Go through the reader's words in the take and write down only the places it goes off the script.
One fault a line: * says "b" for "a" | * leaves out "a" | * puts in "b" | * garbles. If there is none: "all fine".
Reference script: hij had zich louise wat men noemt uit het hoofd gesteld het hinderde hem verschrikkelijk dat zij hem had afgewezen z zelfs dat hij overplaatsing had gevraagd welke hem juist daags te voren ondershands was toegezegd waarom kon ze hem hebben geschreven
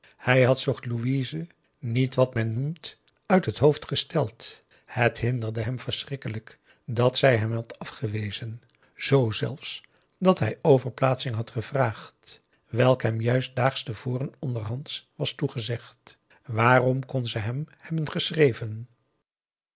* puts in "niet"